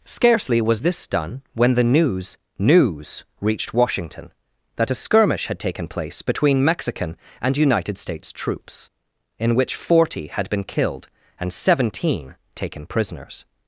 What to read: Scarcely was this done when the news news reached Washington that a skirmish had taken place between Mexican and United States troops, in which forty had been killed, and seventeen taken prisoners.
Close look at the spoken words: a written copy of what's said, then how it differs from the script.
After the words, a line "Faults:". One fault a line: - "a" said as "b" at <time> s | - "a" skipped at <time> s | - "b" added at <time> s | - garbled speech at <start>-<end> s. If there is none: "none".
Scarcely was this done when the news news reached Washington that a skirmish had taken place between Mexican and United States troops, in which forty had been killed, and seventeen taken prisoners.
Faults:
none